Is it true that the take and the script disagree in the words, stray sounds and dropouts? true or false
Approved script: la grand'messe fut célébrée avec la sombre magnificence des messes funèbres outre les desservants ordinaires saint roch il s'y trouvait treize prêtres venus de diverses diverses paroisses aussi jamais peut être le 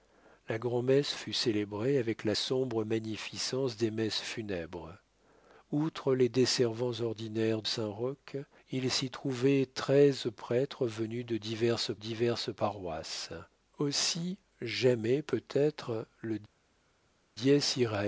false